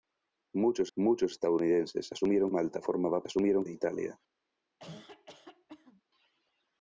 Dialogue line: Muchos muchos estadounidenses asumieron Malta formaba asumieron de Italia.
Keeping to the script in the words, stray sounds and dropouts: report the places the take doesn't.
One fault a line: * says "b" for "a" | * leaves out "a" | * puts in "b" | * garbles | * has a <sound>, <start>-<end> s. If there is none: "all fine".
* has a cough, 4.8-6.0 s